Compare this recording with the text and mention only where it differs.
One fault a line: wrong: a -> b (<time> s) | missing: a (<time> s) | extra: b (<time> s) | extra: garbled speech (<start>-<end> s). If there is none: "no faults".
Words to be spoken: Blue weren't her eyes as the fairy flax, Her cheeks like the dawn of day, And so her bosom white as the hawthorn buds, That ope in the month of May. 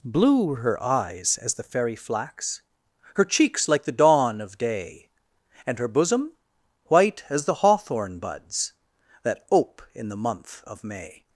wrong: weren't -> were (0.5 s)
missing: so (5.8 s)